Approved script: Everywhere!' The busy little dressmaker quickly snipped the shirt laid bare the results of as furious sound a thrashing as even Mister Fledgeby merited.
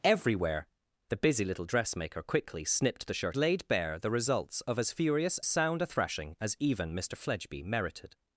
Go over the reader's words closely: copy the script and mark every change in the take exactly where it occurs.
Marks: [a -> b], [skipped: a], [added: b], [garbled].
Everywhere!' The busy little dressmaker quickly snipped the shirt laid bare the results of as furious sound a thrashing as even Mister Fledgeby merited.